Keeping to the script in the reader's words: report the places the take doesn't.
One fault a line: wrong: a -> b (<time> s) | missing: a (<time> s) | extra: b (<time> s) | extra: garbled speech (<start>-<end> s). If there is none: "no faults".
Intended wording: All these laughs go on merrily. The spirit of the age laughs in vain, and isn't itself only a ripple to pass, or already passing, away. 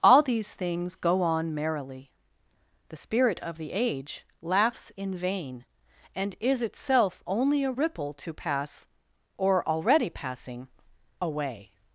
wrong: laughs -> things (0.5 s)
wrong: isn't -> is (6.4 s)